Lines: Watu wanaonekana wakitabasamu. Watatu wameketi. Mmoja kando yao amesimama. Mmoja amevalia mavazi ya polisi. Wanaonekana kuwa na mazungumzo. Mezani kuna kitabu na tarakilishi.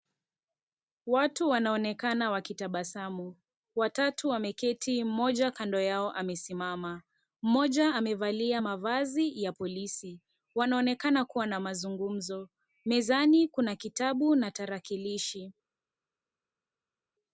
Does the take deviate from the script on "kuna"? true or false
false